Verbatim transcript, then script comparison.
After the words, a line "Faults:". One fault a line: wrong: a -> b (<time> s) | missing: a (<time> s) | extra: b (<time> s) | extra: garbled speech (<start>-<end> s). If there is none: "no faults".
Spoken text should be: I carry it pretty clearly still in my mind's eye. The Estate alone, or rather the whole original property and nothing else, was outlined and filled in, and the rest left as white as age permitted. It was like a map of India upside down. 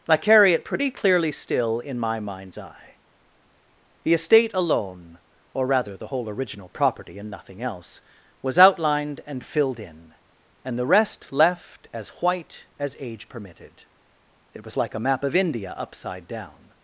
I carry it pretty clearly still in my mind's eye. The Estate alone, or rather the whole original property and nothing else, was outlined and filled in, and the rest left as white as age permitted. It was like a map of India upside down.
Faults:
no faults